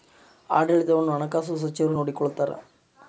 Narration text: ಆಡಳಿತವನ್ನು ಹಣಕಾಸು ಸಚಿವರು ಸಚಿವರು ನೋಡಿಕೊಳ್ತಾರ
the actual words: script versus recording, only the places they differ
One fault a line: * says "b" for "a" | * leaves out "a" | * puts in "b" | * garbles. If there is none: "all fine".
* leaves out "ಸಚಿವರು"